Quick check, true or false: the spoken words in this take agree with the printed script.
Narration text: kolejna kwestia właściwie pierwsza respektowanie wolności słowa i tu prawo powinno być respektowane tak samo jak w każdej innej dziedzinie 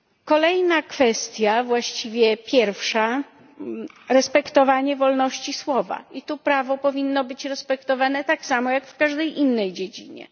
true